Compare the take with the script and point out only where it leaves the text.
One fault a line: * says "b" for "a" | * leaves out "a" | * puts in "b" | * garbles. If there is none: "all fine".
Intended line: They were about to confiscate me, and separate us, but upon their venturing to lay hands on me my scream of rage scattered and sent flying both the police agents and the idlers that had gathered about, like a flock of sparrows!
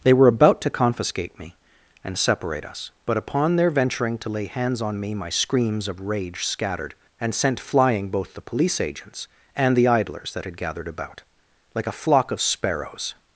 * says "screams" for "scream"